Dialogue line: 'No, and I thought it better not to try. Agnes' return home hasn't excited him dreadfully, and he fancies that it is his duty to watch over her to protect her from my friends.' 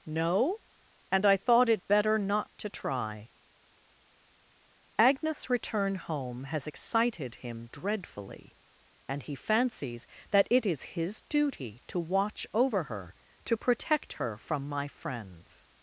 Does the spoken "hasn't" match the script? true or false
false